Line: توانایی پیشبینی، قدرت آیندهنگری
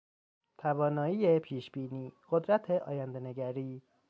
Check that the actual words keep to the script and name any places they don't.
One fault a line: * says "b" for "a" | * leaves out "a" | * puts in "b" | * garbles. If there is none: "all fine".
all fine